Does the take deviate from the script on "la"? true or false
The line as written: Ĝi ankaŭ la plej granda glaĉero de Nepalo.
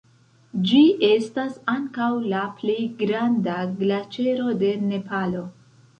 false